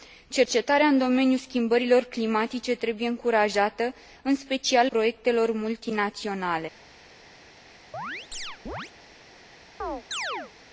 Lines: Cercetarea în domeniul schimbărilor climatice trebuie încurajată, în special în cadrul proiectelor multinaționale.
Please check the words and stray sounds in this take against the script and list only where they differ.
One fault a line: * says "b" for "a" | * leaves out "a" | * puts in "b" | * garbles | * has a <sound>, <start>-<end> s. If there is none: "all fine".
* leaves out "în cadrul"
* has a chirp, 7.9-8.9 s
* has a chirp, 9.8-10.5 s